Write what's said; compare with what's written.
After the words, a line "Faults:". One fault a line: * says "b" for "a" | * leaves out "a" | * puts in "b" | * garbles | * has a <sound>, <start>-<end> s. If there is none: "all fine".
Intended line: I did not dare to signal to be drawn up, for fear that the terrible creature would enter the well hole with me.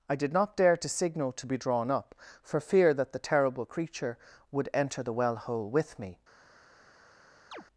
I did not dare to signal to be drawn up, for fear that the terrible creature would enter the well hole with me.
Faults:
* has a chirp, 7.5-7.6 s